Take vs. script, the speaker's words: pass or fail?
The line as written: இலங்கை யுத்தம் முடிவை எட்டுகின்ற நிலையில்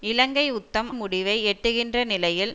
pass